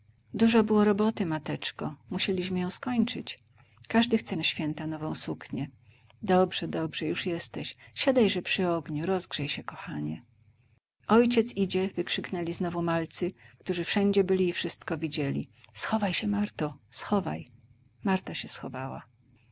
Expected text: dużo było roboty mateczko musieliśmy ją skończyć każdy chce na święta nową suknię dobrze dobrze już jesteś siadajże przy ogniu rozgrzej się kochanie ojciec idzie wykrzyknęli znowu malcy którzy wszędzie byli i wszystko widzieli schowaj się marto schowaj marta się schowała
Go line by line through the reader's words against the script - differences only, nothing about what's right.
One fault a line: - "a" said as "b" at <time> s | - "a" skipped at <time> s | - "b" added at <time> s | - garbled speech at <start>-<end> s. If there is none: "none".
none